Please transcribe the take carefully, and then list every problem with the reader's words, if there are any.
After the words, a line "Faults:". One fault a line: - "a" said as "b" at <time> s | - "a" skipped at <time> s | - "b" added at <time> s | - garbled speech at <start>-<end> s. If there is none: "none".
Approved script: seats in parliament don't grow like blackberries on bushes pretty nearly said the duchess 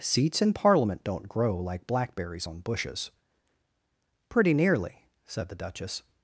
seats in parliament don't grow like blackberries on bushes pretty nearly said the duchess
Faults:
none